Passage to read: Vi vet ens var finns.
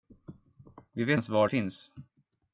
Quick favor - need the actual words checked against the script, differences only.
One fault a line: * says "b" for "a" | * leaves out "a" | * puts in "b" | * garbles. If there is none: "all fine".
all fine